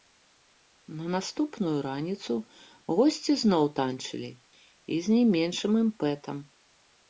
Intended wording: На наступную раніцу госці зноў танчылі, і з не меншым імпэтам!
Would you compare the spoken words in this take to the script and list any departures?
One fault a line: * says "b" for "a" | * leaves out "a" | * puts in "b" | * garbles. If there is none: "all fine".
all fine